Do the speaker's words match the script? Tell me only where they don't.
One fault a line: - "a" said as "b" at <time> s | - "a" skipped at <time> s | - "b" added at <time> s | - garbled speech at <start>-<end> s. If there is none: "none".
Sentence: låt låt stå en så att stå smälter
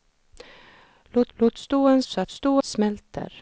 none